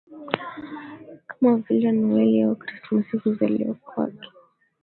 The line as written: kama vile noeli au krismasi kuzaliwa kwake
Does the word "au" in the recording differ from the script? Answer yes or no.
no